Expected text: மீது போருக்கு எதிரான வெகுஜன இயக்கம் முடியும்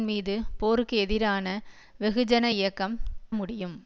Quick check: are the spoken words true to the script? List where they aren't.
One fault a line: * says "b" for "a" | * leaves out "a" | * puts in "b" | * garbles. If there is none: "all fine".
all fine